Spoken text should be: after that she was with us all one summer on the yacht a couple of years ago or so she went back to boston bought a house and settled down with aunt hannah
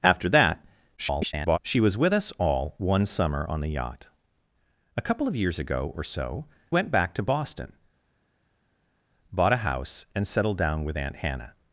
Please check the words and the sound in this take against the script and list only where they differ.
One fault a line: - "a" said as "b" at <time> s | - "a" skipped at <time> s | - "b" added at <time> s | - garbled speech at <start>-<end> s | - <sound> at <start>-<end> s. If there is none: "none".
- garbled speech at 1.0-1.6 s
- "she" skipped at 6.5 s